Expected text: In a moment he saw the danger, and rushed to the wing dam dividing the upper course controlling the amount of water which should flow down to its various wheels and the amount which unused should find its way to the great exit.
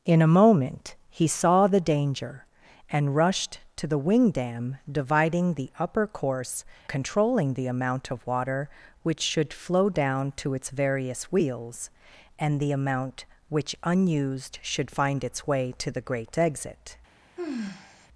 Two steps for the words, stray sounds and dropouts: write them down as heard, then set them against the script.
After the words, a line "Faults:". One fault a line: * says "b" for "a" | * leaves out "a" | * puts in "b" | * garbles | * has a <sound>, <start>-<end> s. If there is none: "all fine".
In a moment he saw the danger, and rushed to the wing dam dividing the upper course controlling the amount of water which should flow down to its various wheels and the amount which unused should find its way to the great exit.
Faults:
* has a sigh, 17.4-18.1 s